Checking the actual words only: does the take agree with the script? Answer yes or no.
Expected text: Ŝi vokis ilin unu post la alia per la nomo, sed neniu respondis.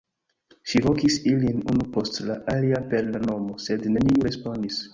yes